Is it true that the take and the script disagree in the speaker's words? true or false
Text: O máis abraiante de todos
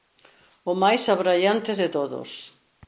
false